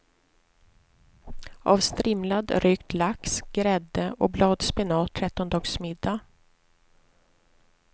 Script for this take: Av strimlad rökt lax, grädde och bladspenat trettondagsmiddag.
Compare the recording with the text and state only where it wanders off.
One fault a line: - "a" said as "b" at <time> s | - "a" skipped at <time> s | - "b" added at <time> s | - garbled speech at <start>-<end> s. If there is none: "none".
none